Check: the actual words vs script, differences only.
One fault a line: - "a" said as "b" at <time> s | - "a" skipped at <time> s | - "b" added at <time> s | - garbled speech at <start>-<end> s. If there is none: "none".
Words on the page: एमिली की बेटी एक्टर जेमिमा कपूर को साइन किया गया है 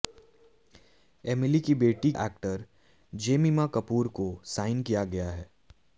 none